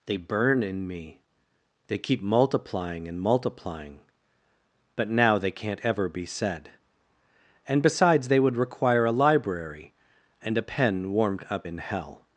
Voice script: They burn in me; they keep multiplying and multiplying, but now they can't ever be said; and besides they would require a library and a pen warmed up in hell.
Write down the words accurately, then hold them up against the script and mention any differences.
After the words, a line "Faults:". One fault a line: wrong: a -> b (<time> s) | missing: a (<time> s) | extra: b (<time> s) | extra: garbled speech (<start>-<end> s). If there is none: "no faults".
They burn in me; they keep multiplying and multiplying, but now they can't ever be said; and besides they would require a library and a pen warmed up in hell.
Faults:
no faults